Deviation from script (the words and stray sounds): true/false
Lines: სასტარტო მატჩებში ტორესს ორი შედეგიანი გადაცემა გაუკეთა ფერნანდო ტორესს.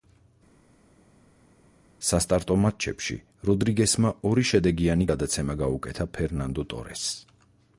true